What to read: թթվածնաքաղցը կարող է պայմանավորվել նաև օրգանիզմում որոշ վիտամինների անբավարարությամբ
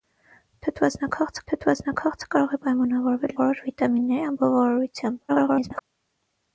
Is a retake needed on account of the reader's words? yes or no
yes